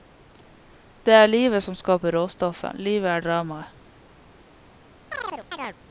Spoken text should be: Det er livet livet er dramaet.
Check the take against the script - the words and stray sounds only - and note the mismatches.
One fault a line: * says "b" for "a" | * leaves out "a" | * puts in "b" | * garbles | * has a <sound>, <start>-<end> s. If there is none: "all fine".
* puts in "som skaper råstoffet"
* has a chirp, 5.1-5.8 s